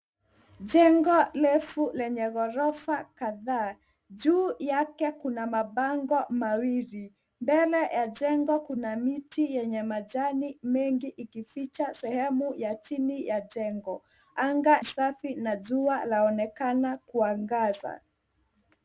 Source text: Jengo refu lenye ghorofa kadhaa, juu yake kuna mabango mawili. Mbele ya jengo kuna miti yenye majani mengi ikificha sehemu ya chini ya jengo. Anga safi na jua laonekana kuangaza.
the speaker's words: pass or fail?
pass